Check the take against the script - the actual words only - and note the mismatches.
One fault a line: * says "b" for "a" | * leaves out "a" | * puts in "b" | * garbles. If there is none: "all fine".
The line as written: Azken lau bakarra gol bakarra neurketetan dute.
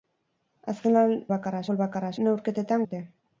all fine